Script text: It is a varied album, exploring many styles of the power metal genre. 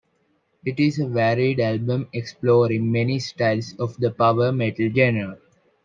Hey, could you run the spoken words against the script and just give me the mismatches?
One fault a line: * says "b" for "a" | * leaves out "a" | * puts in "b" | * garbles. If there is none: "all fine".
all fine